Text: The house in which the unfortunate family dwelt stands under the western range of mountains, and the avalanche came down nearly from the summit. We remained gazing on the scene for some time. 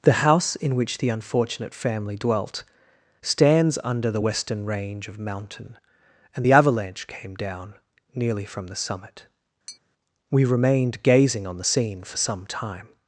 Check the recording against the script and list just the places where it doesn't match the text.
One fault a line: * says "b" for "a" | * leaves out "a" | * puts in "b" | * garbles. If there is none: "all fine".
* says "mountain" for "mountains"